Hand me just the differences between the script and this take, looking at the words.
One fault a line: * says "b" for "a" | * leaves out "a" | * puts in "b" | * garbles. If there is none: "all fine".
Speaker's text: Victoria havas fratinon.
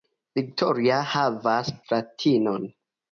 all fine